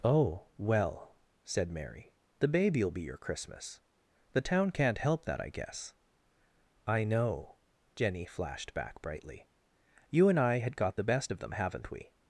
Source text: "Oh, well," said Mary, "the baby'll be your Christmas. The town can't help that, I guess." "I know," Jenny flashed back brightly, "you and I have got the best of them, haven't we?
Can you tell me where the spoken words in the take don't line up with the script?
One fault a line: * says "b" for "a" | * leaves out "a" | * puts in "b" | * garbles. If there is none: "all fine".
* says "had" for "have"